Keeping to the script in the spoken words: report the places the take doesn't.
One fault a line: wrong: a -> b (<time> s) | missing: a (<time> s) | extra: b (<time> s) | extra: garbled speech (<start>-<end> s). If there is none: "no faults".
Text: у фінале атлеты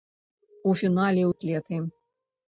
no faults